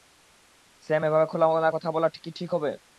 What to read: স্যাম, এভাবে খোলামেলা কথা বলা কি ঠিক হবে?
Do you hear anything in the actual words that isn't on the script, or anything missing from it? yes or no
no